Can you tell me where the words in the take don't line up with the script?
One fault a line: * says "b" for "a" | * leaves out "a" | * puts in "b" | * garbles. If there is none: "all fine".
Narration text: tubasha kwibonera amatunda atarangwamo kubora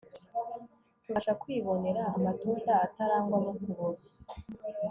all fine